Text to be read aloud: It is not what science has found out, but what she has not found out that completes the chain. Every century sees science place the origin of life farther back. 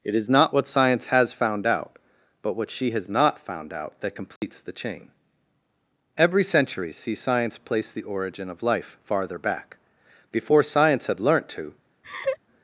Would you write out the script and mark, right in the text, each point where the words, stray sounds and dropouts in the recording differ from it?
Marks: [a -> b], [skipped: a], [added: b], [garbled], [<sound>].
It is not what science has found out, but what she has not found out that completes [dropout] the chain. Every century sees science place the origin of life farther back. [added: Before science had learnt to] [laugh]